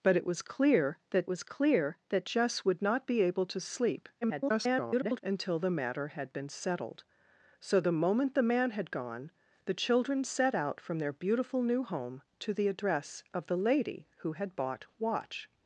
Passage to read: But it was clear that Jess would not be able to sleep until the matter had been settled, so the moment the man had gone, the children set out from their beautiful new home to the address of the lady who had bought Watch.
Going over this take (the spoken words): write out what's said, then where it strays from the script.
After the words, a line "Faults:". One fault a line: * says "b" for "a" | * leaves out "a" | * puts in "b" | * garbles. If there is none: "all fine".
But it was clear that was clear that Jess would not be able to sleep [garbled] until the matter had been settled, so the moment the man had gone, the children set out from their beautiful new home to the address of the lady who had bought Watch.
Faults:
* puts in "was clear that"
* garbles